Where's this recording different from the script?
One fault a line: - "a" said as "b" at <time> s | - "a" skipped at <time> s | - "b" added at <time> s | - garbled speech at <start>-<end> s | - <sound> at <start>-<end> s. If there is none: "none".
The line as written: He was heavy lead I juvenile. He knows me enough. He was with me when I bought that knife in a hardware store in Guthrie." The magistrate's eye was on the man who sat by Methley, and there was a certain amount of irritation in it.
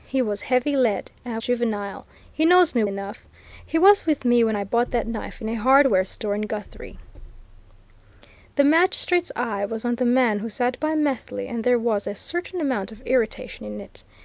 none